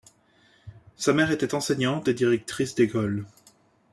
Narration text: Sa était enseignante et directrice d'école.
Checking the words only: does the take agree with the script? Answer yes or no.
no